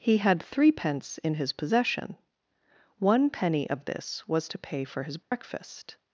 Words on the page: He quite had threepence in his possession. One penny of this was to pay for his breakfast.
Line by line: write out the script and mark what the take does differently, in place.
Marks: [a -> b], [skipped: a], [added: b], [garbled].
He [skipped: quite] had threepence in his possession. One penny of this was to pay for his breakfast.